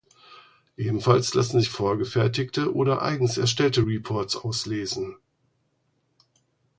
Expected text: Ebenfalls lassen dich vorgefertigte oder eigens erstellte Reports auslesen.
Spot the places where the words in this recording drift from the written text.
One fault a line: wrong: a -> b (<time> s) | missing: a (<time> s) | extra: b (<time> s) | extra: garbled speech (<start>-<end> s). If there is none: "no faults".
wrong: dich -> sich (1.6 s)